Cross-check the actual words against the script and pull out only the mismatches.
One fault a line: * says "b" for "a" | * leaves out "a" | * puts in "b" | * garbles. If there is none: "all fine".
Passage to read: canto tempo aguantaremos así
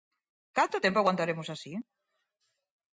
all fine